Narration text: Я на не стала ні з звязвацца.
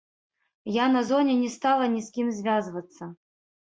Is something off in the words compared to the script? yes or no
yes